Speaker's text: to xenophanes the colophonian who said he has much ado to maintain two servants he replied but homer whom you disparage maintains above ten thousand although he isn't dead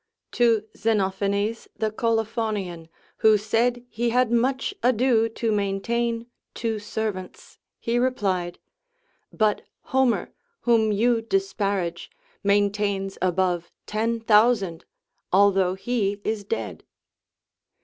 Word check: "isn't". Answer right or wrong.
wrong